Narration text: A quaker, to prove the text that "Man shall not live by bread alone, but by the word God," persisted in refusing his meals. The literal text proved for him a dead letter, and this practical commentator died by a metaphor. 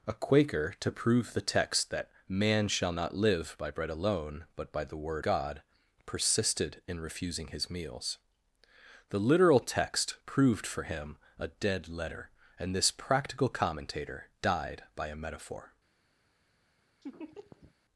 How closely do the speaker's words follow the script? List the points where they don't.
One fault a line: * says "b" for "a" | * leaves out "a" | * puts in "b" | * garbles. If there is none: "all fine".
all fine